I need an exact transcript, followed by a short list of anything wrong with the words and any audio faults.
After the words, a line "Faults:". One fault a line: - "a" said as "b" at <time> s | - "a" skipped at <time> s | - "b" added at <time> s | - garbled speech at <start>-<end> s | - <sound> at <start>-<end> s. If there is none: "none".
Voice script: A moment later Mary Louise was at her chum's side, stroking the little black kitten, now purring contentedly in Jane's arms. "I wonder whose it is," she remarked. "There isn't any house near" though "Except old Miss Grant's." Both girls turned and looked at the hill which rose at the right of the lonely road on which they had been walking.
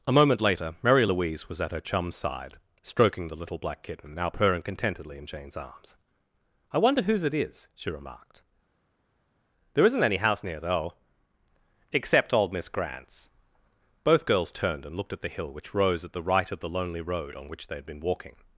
A moment later Mary Louise was at her chum's side, stroking the little black kitten, now purring contentedly in Jane's arms. "I wonder whose it is," she remarked. "There isn't any house near" though "Except old Miss Grant's." Both girls turned and looked at the hill which rose at the right of the lonely road on which they had been walking.
Faults:
none